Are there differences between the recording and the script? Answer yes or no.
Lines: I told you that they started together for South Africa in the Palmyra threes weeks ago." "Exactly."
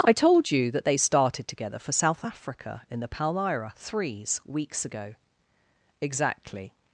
no